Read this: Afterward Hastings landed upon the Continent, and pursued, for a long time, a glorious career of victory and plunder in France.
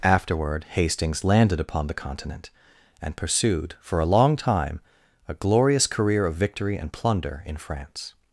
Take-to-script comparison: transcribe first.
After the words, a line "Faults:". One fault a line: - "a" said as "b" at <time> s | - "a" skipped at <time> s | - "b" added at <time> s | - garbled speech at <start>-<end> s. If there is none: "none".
Afterward Hastings landed upon the Continent, and pursued, for a long time, a glorious career of victory and plunder in France.
Faults:
none